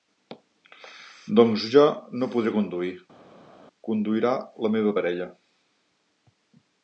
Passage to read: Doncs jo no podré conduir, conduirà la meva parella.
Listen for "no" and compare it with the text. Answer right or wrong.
right